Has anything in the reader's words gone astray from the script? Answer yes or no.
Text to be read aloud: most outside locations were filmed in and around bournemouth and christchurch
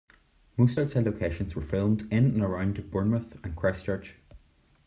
no